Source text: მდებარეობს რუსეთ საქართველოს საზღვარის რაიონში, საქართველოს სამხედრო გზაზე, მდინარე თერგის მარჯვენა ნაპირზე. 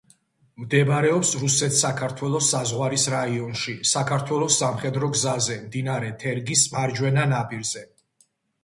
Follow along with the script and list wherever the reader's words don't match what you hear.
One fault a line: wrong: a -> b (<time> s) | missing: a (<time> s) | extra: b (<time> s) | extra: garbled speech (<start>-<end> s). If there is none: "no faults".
no faults